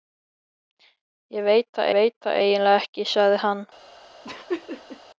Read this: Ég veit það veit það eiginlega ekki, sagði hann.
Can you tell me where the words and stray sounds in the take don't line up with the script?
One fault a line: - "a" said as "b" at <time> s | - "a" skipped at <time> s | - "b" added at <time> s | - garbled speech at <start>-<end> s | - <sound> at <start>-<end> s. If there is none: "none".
- laugh at 4.2-5.0 s